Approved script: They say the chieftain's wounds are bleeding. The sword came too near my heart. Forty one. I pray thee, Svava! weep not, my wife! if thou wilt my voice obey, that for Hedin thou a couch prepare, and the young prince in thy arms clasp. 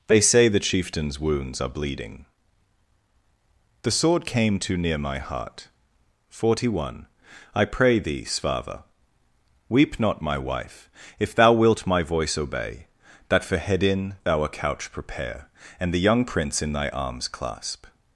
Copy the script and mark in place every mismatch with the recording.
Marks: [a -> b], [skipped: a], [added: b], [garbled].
They say the chieftain's wounds are bleeding. The sword came too near my heart. Forty one. I pray thee, Svava! weep not, my wife! if thou wilt my voice obey, that for Hedin thou a couch prepare, and the young prince in thy arms clasp.